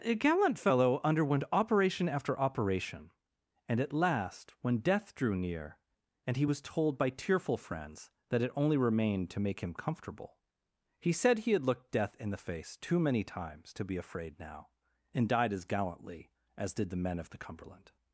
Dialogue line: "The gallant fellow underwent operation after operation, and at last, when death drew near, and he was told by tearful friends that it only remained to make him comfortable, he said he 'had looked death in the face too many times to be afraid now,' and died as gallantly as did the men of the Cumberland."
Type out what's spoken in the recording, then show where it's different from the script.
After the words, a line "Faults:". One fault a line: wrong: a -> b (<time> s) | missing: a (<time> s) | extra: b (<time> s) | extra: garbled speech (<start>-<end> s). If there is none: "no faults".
"A gallant fellow underwent operation after operation, and at last, when death drew near, and he was told by tearful friends that it only remained to make him comfortable, he said he 'had looked death in the face too many times to be afraid now,' and died as gallantly as did the men of the Cumberland."
Faults:
wrong: The -> A (0.0 s)